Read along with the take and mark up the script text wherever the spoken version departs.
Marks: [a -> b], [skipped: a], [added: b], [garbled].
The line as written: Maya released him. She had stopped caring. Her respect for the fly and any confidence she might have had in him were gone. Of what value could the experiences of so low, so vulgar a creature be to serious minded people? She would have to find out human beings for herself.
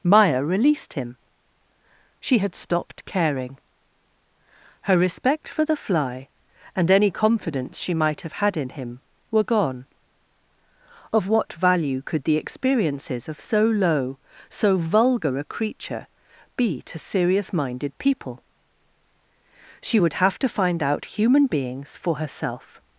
Maya released him. She had stopped caring. Her respect for the fly and any confidence she might have had in him were gone. Of what value could the experiences of so low, so vulgar a creature be to serious minded people? She would have to find out human beings for herself.